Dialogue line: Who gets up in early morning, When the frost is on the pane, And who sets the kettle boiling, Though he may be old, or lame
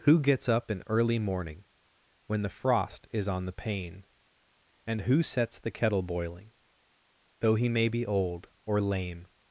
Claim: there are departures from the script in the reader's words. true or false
false